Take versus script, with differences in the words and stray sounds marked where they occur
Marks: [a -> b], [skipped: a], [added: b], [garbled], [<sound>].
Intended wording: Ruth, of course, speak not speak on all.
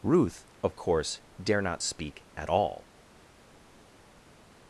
Ruth, of course, [speak -> dare] not speak [on -> at] all.